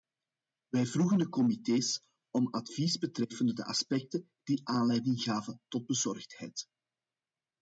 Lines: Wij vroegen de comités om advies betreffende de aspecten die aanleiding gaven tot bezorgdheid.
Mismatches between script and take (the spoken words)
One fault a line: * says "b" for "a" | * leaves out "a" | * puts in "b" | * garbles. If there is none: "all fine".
all fine